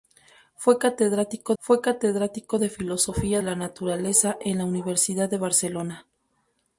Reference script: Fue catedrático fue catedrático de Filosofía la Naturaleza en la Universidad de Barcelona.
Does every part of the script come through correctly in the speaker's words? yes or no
yes